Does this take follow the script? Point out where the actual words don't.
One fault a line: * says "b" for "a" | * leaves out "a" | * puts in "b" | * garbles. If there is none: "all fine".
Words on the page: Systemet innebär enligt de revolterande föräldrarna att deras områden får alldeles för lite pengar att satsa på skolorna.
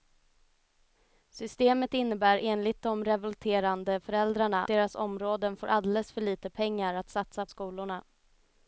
* leaves out "att"
* leaves out "på"